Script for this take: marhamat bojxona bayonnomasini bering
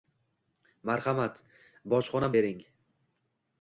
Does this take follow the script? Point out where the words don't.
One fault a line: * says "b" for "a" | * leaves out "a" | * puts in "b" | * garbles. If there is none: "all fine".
* leaves out "bayonnomasini"